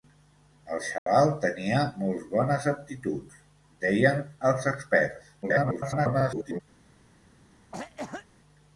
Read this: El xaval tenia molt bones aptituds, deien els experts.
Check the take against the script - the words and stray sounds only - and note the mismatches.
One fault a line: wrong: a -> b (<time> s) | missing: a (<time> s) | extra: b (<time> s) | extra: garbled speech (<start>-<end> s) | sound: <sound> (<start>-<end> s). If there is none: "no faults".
sound: dropout (1.0-1.1 s)
extra: garbled speech (5.4-6.6 s)
sound: cough (7.7-8.3 s)